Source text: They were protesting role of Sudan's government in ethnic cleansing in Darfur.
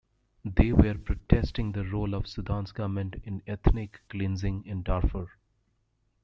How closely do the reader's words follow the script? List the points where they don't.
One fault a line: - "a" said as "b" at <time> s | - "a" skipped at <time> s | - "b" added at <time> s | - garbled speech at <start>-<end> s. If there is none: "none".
- "the" added at 1.7 s